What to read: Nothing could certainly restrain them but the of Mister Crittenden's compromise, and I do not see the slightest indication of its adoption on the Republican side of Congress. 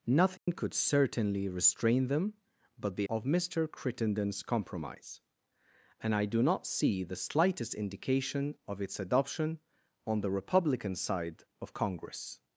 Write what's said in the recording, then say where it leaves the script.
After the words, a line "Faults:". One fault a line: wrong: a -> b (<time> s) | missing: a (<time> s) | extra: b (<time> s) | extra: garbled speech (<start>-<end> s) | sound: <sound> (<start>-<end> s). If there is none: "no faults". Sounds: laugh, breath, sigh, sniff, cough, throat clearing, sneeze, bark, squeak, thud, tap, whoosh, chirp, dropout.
Nothing could certainly restrain them but the of Mister Crittenden's compromise, and I do not see the slightest indication of its adoption on the Republican side of Congress.
Faults:
sound: dropout (0.4-0.5 s)